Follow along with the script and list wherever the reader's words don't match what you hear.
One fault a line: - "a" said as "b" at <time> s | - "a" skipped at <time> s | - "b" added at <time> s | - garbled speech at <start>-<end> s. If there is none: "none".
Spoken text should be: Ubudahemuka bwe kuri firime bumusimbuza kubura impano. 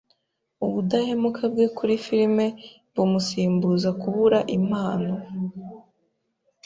none